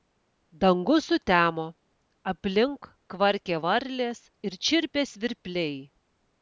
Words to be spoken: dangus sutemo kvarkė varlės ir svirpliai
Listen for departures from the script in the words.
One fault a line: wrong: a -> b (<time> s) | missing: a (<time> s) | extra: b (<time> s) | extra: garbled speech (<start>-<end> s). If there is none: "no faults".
extra: aplink (2.3 s)
extra: čirpė (4.7 s)